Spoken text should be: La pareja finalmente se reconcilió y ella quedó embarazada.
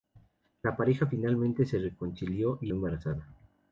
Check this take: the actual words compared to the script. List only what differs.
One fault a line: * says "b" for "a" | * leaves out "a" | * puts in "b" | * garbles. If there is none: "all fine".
* leaves out "ella quedó"